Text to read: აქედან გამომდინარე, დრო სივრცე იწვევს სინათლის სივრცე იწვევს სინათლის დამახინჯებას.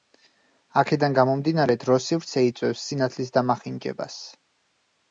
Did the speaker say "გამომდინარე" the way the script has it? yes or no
yes